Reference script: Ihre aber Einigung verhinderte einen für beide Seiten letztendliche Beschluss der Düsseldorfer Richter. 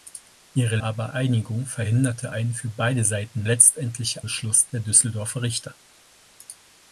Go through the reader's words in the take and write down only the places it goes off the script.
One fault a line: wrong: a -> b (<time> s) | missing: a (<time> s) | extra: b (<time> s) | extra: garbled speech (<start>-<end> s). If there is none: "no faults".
no faults